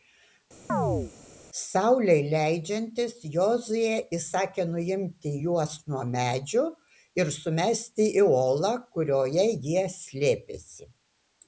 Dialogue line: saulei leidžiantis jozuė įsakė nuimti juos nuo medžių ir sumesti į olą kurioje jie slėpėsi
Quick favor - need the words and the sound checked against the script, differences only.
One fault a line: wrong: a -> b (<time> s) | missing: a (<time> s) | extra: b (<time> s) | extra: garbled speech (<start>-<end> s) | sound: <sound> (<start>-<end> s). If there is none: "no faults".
sound: chirp (0.7-1.1 s)